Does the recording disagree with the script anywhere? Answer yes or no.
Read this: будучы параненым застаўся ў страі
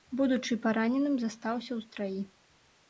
no